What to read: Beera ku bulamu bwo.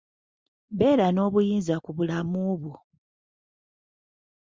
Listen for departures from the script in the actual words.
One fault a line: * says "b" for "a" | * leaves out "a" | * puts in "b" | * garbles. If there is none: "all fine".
* puts in "n'obuyinza"